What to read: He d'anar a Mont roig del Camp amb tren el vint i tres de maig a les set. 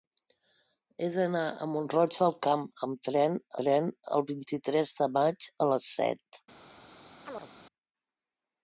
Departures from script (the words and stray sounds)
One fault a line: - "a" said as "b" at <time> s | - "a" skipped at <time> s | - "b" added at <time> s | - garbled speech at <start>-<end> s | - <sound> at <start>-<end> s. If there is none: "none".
- "tren" added at 3.6 s
- chirp at 7.3-7.5 s